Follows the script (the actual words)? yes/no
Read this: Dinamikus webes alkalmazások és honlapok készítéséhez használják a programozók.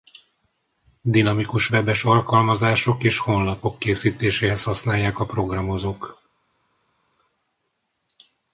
yes